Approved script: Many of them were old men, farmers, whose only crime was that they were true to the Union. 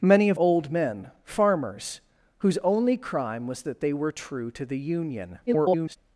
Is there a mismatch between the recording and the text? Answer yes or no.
yes